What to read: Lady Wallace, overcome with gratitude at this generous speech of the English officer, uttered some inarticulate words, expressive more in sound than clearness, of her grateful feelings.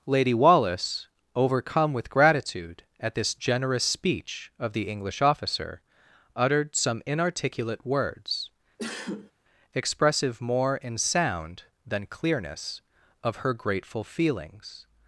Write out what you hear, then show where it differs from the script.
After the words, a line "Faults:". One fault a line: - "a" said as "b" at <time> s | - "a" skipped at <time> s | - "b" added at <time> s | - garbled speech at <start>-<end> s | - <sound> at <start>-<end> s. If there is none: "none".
Lady Wallace, overcome with gratitude at this generous speech of the English officer, uttered some inarticulate words, expressive more in sound than clearness, of her grateful feelings.
Faults:
- sneeze at 8.8-9.3 s